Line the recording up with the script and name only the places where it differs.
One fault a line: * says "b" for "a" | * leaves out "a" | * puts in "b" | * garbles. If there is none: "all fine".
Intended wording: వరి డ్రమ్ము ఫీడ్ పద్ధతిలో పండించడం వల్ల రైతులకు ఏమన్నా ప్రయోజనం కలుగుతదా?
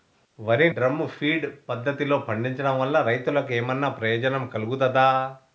all fine